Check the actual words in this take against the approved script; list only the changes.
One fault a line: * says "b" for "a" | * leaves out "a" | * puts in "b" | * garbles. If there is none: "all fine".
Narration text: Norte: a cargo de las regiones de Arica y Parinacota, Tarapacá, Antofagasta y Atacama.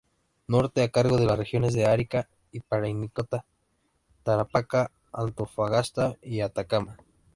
all fine